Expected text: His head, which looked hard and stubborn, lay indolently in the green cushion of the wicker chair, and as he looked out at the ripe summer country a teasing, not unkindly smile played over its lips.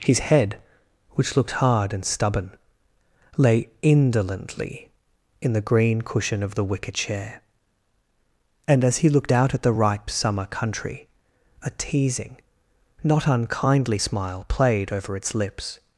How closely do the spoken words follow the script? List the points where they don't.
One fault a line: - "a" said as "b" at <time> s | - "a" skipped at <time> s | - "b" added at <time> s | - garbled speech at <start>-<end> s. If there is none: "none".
none